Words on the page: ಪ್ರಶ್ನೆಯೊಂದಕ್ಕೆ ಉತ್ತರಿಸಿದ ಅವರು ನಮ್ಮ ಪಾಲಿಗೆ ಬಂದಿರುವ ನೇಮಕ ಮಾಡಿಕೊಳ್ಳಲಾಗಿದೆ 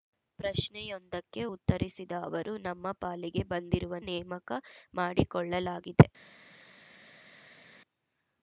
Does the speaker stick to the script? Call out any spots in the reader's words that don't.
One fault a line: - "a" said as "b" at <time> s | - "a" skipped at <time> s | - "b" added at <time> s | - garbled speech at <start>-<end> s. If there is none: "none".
none